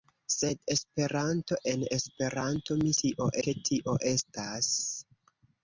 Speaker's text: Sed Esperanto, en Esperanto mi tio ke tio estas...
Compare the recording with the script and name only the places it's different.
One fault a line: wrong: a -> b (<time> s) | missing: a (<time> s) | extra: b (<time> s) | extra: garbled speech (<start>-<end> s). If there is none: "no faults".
no faults